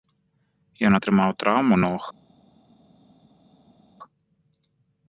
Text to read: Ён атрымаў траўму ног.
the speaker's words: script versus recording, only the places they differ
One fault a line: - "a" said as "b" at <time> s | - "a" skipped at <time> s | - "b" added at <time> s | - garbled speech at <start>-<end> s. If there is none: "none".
none